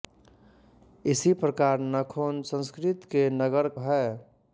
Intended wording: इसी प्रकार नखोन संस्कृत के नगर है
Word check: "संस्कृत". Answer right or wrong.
right